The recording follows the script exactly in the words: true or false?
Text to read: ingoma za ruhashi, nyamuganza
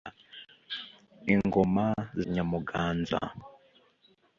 false